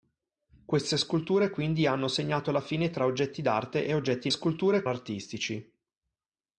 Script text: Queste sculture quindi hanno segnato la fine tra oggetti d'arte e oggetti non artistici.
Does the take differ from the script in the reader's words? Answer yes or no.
yes